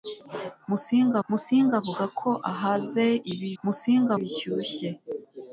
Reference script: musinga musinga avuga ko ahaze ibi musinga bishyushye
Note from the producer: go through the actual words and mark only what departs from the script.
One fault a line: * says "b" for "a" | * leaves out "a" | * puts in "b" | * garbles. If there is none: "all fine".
all fine